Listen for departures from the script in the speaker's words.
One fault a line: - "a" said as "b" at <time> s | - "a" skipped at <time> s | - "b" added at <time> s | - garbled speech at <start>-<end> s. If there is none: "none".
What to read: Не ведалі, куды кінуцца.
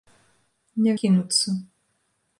- "ведалі куды" skipped at 0.9 s